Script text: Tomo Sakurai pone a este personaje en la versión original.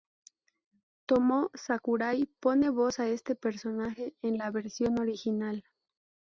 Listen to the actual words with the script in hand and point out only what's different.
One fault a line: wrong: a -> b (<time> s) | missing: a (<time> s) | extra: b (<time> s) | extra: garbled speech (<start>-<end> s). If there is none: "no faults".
extra: voz (2.7 s)